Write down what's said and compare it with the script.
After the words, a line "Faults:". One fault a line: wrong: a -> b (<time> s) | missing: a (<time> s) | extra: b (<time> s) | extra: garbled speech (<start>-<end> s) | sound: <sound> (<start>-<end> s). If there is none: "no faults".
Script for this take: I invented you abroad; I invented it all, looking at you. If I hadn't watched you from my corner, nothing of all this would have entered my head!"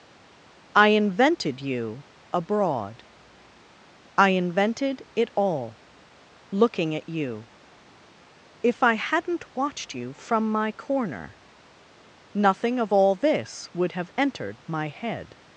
I invented you abroad; I invented it all, looking at you. If I hadn't watched you from my corner, nothing of all this would have entered my head!"
Faults:
no faults